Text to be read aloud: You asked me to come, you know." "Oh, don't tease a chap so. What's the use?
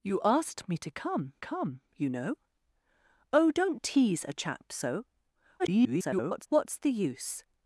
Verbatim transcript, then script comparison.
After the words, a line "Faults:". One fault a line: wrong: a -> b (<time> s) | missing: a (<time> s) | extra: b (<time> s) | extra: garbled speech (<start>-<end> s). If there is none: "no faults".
You asked me to come come, you know." "Oh, don't tease a chap so. [garbled] What's the use?
Faults:
extra: come (1.4 s)
extra: garbled speech (5.6-6.5 s)